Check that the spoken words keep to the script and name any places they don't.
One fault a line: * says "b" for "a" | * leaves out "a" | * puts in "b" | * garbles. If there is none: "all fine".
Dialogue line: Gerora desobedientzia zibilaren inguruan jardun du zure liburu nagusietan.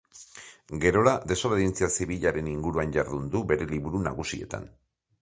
* says "bere" for "zure"